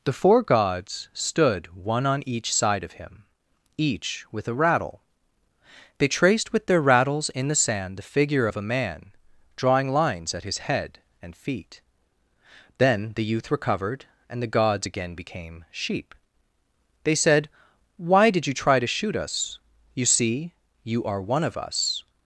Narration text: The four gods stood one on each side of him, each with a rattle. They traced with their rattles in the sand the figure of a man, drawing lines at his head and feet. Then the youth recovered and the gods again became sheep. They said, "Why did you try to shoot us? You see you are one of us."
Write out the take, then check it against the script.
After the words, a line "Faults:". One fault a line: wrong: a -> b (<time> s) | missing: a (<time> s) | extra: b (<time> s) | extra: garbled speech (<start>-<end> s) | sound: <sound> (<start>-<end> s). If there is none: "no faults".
The four gods stood one on each side of him, each with a rattle. They traced with their rattles in the sand the figure of a man, drawing lines at his head and feet. Then the youth recovered and the gods again became sheep. They said, "Why did you try to shoot us? You see you are one of us."
Faults:
no faults